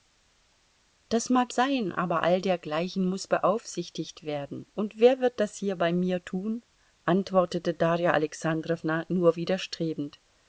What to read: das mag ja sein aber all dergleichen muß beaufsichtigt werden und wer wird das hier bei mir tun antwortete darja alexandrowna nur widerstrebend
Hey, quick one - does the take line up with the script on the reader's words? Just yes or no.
no